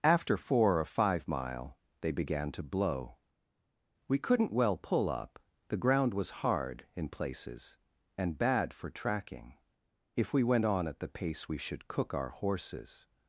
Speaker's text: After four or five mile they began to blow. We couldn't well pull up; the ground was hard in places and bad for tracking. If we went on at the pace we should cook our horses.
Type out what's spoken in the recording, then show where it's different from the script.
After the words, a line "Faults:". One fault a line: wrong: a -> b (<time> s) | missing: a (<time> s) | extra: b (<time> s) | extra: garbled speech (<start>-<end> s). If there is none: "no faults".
After four or five mile they began to blow. We couldn't well pull up; the ground was hard in places and bad for tracking. If we went on at the pace we should cook our horses.
Faults:
no faults